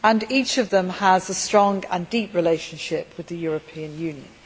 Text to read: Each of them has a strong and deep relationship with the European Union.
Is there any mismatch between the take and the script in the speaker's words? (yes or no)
no